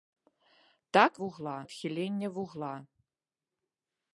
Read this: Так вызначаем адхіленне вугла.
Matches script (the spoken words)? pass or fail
fail